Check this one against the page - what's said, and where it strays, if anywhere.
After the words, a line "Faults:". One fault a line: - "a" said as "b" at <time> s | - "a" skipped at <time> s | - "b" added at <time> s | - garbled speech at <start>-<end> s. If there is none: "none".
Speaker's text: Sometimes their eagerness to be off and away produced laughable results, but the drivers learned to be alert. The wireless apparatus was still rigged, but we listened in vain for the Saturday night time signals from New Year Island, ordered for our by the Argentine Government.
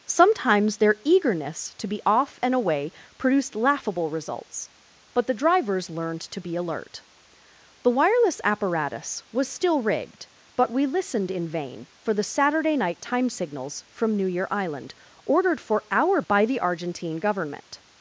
Sometimes their eagerness to be off and away produced laughable results, but the drivers learned to be alert. The wireless apparatus was still rigged, but we listened in vain for the Saturday night time signals from New Year Island, ordered for our by the Argentine Government.
Faults:
none